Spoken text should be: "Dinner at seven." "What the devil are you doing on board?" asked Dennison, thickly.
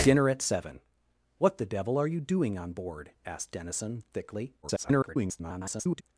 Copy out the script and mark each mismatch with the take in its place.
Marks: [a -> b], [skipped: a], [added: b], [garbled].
"Dinner at seven." "What the devil are you doing on board?" asked Dennison, thickly. [garbled]